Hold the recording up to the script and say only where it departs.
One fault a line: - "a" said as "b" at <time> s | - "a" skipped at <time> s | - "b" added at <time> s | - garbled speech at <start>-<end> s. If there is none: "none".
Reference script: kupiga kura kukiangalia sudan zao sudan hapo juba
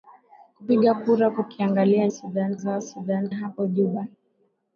none